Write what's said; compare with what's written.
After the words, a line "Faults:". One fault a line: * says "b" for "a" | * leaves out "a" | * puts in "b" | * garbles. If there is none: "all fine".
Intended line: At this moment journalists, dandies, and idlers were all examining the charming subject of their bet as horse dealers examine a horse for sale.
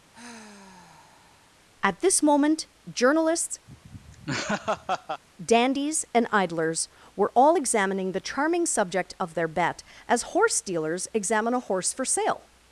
At this moment journalists, dandies, and idlers were all examining the charming subject of their bet as horse dealers examine a horse for sale.
Faults:
all fine